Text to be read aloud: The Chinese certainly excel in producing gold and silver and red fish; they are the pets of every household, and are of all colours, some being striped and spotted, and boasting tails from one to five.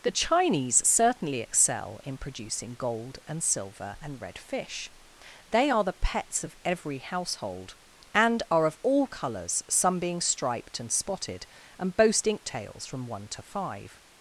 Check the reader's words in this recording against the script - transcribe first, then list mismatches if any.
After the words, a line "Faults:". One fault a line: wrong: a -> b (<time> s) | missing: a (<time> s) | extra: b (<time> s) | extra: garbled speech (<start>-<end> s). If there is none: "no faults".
The Chinese certainly excel in producing gold and silver and red fish; they are the pets of every household, and are of all colours, some being striped and spotted, and boasting tails from one to five.
Faults:
no faults